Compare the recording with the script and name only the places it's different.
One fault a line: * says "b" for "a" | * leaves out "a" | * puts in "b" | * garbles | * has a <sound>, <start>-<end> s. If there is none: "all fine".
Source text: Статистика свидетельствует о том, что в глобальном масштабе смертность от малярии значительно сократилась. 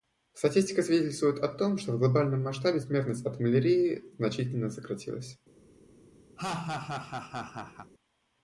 * has a laugh, 6.4-7.9 s